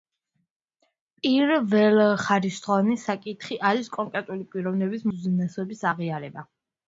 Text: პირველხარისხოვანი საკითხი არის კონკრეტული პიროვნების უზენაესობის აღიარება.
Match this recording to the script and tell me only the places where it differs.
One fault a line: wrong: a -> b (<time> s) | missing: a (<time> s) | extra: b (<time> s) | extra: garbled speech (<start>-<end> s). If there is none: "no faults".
no faults